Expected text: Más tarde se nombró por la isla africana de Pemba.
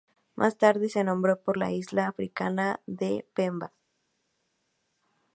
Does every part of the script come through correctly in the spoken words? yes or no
yes